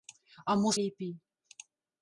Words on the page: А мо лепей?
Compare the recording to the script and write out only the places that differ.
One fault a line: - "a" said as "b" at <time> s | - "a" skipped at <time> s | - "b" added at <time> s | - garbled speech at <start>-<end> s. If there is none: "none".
none